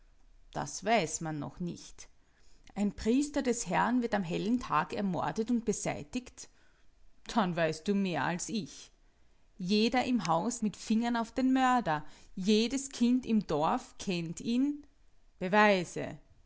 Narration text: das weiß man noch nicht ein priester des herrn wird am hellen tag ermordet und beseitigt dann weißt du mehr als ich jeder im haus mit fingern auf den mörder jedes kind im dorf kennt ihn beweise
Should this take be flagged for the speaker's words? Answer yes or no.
no